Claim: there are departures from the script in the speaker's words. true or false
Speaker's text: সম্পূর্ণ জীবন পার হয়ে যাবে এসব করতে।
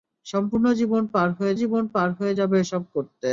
true